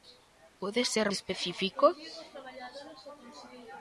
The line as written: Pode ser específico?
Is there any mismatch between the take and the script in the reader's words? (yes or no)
no